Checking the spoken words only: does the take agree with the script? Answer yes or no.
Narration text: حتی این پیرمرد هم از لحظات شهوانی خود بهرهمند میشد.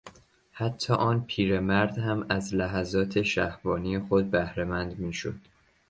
no